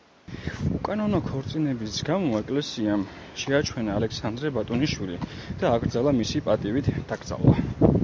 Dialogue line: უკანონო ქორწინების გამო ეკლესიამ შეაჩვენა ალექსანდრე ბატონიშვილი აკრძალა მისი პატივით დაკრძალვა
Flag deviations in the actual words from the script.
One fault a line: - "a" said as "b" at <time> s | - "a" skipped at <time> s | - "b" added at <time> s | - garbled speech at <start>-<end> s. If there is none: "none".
- "და" added at 5.6 s